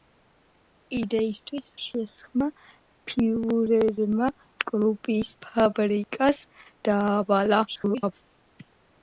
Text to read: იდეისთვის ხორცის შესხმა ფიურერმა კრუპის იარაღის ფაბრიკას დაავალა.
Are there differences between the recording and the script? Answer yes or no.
yes